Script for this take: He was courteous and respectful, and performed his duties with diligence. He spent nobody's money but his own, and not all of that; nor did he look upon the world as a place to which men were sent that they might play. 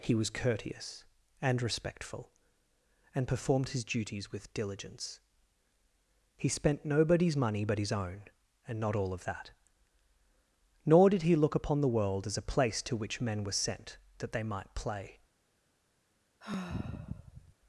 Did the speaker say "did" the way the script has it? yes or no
yes